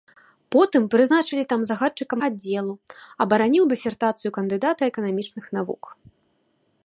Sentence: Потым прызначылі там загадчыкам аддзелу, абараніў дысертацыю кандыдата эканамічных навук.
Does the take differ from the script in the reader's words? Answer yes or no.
no